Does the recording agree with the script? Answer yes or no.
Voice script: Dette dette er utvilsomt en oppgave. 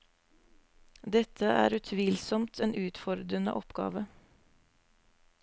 no